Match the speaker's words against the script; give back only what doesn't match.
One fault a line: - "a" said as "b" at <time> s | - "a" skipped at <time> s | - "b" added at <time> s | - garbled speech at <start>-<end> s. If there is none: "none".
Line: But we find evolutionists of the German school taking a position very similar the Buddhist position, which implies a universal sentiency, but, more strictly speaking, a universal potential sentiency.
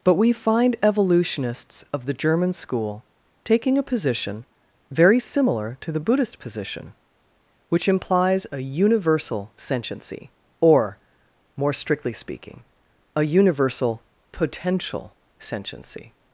- "to" added at 5.8 s
- "but" said as "or" at 10.6 s